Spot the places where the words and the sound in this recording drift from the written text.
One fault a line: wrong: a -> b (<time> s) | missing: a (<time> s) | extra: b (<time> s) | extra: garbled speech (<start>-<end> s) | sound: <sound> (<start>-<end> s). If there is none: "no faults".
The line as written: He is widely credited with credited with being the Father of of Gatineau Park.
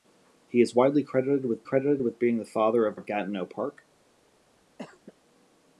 sound: cough (4.8-5.1 s)